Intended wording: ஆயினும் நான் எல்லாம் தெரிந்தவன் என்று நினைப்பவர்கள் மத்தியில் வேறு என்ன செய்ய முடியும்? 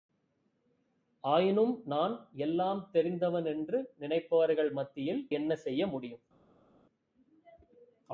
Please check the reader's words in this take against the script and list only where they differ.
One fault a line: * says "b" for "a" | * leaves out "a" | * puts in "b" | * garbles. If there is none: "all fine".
* leaves out "வேறு"